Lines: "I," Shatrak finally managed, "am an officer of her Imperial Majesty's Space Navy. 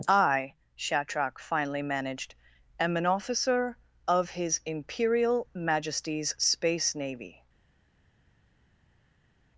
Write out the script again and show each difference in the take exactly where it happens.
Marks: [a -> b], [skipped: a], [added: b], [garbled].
"I," Shatrak finally managed, "am an officer of [her -> his] Imperial Majesty's Space Navy.